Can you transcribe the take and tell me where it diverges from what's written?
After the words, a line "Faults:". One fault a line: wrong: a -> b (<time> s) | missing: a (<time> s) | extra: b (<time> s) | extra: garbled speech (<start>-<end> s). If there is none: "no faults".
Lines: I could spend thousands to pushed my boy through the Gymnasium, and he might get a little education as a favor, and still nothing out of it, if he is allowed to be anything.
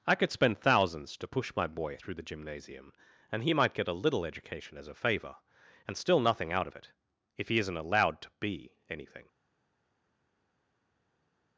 I could spend thousands to push my boy through the Gymnasium, and he might get a little education as a favor, and still nothing out of it, if he isn't allowed to be anything.
Faults:
wrong: pushed -> push (1.3 s)
wrong: is -> isn't (7.6 s)